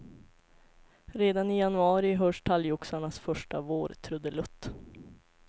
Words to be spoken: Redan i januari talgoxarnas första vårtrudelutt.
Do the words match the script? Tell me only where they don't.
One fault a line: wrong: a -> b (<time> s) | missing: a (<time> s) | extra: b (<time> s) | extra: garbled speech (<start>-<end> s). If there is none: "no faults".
extra: hörs (2.1 s)